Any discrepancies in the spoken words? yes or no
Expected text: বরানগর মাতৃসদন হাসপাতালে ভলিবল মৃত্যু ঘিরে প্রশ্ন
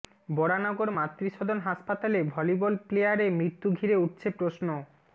yes